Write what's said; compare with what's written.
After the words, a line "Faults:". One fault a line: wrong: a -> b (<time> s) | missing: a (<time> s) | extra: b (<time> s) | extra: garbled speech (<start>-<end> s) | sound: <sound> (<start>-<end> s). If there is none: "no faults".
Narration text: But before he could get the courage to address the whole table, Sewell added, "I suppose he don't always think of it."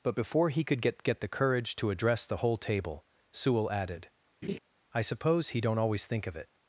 But before he could get get the courage to address the whole table, Sewell added, "I suppose he don't always think of it."
Faults:
extra: get (1.0 s)
sound: laugh (4.4-4.6 s)